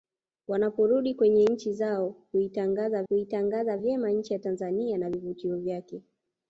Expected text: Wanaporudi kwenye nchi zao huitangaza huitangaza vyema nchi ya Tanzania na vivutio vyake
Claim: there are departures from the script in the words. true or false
false